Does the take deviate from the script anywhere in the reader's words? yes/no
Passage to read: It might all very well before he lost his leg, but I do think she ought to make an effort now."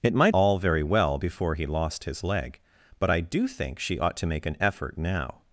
no